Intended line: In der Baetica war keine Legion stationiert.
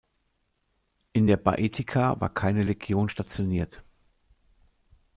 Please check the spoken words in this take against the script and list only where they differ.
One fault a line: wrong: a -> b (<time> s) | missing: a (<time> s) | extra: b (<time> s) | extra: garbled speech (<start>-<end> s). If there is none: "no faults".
no faults